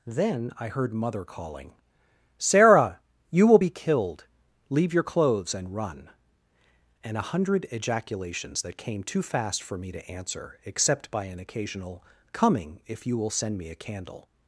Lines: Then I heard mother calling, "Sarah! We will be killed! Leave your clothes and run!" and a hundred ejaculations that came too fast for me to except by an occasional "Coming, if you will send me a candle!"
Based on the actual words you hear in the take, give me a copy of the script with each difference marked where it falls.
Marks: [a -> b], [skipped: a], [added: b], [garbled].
Then I heard mother calling, "Sarah! [We -> You] will be killed! Leave your clothes and run!" and a hundred ejaculations that came too fast for me to [added: answer] except by an occasional "Coming, if you will send me a candle!"